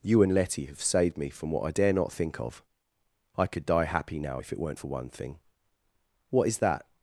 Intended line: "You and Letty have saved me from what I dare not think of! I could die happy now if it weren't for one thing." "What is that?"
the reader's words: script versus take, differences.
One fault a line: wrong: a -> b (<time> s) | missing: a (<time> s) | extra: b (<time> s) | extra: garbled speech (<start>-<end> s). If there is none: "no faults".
no faults